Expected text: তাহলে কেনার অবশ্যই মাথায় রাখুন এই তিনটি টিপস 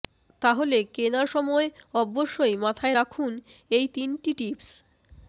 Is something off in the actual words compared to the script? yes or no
yes